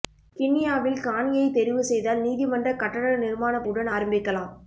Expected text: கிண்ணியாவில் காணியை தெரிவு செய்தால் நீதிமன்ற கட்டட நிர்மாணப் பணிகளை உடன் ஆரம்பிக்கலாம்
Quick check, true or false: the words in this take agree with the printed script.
false